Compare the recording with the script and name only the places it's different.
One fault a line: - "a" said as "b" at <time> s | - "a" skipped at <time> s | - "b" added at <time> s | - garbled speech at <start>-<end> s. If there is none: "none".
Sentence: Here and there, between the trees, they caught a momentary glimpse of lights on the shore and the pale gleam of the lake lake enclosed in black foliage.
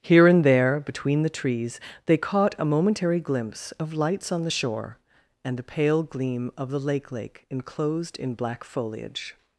none